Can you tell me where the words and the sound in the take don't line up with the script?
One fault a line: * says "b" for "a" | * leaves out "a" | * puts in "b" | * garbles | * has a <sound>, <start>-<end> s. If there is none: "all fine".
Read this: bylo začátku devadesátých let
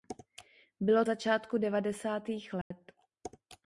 * has a dropout, 2.6-2.7 s